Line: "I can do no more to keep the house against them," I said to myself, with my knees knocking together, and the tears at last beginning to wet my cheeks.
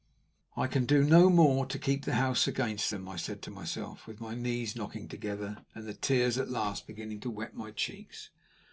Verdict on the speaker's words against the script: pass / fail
pass